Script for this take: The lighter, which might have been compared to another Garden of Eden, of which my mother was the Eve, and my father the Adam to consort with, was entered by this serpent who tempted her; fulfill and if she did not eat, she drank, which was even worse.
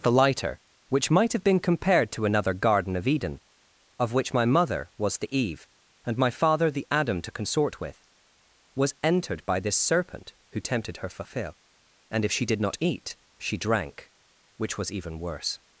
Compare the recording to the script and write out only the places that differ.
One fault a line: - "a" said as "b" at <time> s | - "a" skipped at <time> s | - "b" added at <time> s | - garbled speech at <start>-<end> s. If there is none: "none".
none